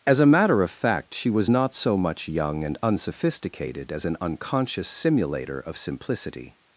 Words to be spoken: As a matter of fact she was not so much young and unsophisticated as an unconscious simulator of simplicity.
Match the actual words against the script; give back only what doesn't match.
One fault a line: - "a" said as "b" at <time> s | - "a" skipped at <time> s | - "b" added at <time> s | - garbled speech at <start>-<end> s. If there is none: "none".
none